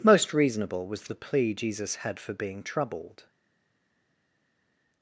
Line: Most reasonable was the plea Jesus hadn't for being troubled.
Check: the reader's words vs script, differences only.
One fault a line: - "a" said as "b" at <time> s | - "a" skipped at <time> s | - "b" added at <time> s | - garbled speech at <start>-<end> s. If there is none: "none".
- "hadn't" said as "had" at 2.0 s